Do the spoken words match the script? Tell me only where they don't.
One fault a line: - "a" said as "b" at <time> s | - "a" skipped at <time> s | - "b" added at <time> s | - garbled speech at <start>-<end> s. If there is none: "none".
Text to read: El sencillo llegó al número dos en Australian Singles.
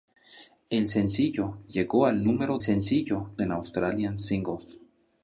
- "dos" said as "sencillo" at 2.6 s